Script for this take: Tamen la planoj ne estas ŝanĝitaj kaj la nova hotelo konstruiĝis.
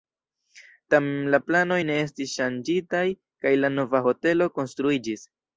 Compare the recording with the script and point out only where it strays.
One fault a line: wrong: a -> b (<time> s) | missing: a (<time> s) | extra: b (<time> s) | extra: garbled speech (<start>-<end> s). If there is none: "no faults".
wrong: estas -> estis (2.1 s)